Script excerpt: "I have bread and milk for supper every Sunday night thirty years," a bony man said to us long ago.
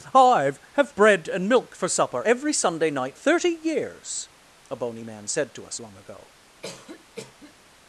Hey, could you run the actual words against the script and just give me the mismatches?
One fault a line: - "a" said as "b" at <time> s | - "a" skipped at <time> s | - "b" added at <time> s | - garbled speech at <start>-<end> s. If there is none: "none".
none